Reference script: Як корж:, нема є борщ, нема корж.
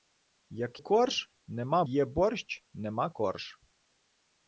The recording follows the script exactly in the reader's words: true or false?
true